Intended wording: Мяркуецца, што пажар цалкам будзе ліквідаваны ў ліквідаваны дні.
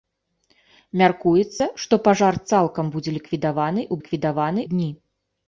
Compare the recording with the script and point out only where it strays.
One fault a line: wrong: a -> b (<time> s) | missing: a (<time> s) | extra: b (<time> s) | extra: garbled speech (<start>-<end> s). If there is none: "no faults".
no faults